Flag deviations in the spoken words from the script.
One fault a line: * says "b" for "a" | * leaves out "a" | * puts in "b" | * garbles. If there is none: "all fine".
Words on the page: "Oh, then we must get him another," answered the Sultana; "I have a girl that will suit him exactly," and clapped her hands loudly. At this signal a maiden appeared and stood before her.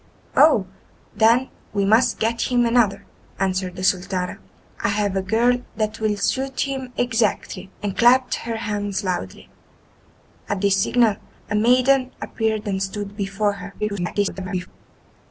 * garbles